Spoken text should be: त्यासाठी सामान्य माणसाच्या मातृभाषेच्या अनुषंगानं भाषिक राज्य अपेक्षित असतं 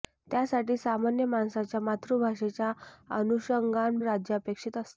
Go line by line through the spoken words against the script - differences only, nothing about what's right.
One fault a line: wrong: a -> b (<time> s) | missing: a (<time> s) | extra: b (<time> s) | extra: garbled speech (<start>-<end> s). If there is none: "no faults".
missing: भाषिक (4.0 s)